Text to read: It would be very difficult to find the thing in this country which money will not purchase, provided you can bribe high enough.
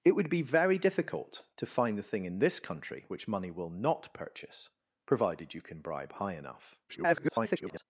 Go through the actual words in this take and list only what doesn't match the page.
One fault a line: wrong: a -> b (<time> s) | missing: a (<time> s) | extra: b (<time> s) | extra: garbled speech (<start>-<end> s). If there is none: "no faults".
extra: garbled speech (6.9-7.8 s)